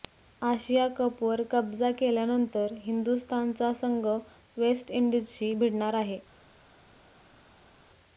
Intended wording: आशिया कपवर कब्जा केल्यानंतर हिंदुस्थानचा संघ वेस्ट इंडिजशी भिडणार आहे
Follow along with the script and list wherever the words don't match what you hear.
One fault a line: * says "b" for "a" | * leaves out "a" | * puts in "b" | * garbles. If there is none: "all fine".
all fine